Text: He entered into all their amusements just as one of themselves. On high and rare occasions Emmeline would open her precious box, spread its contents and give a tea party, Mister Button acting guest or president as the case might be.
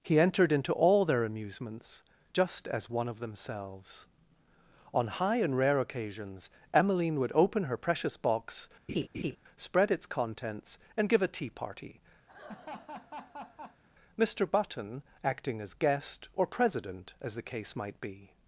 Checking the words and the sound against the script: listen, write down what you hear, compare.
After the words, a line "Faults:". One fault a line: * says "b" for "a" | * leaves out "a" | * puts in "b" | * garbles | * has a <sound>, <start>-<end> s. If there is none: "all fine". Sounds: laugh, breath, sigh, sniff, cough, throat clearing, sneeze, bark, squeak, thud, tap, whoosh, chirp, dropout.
He entered into all their amusements just as one of themselves. On high and rare occasions Emmeline would open her precious box, spread its contents and give a tea party, Mister Button acting as guest or president as the case might be.
Faults:
* has a laugh, 8.9-9.4 s
* has a laugh, 12.3-13.8 s
* puts in "as"